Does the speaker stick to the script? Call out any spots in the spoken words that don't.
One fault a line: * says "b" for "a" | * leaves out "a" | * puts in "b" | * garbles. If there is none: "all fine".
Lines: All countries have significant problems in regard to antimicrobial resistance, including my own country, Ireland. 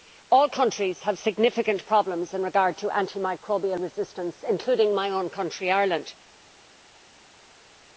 all fine